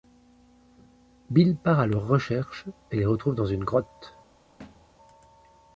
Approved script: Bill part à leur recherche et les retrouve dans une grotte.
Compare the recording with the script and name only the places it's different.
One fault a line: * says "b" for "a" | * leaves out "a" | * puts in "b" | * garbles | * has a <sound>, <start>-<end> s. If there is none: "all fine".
* has a thud, 4.6-5.0 s